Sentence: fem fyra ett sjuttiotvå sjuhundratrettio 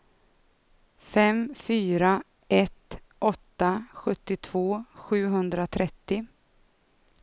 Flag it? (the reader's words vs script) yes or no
yes